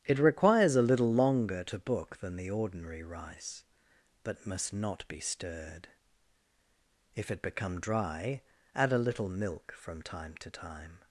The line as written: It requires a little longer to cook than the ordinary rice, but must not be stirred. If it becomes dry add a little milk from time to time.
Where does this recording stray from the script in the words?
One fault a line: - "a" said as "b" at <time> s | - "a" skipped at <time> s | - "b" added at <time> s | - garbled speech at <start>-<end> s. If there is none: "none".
- "cook" said as "book" at 1.8 s
- "becomes" said as "become" at 7.4 s